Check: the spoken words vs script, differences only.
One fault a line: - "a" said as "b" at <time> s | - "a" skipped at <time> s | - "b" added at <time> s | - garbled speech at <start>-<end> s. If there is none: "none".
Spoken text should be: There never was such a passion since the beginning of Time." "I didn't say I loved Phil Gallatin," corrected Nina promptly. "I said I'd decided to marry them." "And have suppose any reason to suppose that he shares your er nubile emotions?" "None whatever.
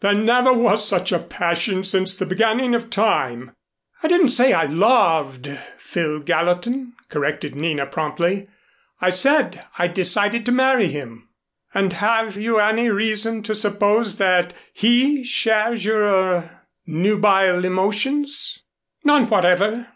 - "them" said as "him" at 10.9 s
- "suppose" said as "you" at 12.4 s